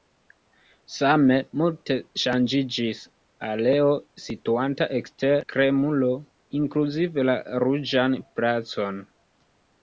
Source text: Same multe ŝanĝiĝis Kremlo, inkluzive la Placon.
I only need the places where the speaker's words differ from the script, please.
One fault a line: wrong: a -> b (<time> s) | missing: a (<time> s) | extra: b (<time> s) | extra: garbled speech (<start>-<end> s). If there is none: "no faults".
extra: areo situanta ekster (3.5 s)
extra: Ruĝan (7.7 s)